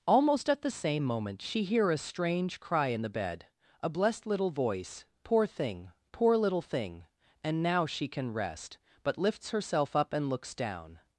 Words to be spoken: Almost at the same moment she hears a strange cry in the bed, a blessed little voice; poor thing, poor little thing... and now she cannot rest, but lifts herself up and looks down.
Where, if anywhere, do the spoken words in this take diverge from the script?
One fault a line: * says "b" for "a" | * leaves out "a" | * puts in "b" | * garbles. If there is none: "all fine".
* says "hear" for "hears"
* says "can" for "cannot"